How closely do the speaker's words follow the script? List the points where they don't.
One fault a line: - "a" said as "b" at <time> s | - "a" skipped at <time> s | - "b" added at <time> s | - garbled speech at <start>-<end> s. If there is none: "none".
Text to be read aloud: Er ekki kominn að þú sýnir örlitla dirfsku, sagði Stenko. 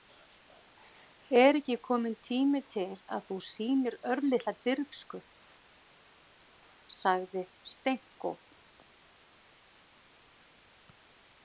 - "tími til" added at 2.3 s